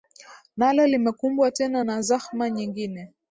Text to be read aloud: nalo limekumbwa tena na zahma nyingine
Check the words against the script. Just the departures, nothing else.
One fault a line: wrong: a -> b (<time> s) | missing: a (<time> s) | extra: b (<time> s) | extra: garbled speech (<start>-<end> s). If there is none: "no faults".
no faults